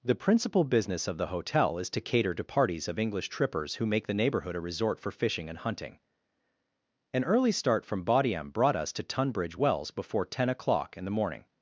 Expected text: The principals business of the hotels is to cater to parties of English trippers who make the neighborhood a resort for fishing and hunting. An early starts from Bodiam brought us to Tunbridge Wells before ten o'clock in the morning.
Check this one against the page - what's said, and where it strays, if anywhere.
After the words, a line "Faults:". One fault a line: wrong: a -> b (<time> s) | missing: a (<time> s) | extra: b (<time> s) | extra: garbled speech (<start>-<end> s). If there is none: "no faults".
The principal business of the hotel is to cater to parties of English trippers who make the neighborhood a resort for fishing and hunting. An early start from Bodiam brought us to Tunbridge Wells before ten o'clock in the morning.
Faults:
wrong: principals -> principal (0.1 s)
wrong: hotels -> hotel (1.3 s)
wrong: starts -> start (7.5 s)